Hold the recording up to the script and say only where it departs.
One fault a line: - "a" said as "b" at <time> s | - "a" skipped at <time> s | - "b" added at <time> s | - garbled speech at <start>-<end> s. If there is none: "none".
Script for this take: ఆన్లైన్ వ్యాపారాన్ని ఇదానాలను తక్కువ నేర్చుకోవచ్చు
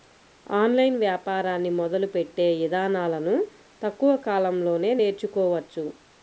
- "మొదలుపెట్టే" added at 1.8 s
- "కాలంలోనే" added at 4.3 s